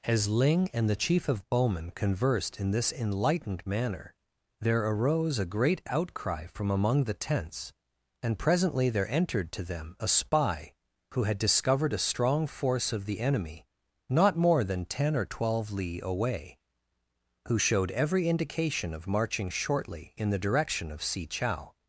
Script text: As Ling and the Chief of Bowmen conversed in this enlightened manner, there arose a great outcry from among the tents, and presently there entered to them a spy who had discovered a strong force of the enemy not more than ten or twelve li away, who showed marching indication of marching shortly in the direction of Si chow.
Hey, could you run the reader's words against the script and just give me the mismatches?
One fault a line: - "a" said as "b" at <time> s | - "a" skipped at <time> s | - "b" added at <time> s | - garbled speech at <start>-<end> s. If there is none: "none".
- "marching" said as "every" at 17.9 s